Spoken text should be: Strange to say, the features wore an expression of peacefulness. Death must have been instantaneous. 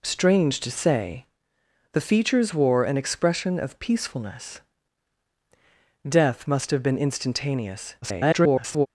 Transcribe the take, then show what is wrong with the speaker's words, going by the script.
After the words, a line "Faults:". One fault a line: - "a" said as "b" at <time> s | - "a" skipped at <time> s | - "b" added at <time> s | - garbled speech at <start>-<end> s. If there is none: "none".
Strange to say, the features wore an expression of peacefulness. Death must have been instantaneous. [garbled]
Faults:
- garbled speech at 8.0-8.9 s